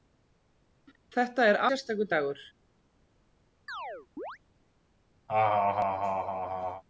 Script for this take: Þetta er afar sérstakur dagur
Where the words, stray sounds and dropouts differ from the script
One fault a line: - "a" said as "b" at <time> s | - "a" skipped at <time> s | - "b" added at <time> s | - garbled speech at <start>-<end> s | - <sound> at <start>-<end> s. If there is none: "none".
- "afar" skipped at 1.6 s
- chirp at 3.7-4.4 s
- laugh at 5.3-6.8 s